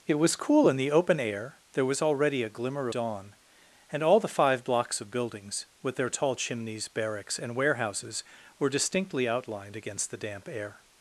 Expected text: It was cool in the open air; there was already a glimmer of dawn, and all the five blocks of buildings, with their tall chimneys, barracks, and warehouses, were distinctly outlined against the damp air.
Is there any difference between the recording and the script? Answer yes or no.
yes